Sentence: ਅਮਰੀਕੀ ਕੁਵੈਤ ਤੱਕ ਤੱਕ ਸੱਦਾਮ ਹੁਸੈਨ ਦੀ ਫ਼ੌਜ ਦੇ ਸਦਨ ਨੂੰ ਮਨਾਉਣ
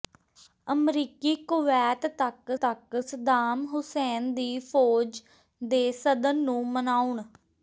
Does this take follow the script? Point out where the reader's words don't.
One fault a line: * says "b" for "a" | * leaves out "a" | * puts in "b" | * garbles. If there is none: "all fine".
all fine